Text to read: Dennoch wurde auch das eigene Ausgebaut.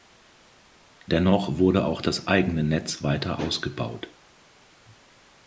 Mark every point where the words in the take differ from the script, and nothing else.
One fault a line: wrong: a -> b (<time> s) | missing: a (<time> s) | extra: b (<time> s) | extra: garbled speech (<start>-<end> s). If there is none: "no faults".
extra: Netz weiter (2.6 s)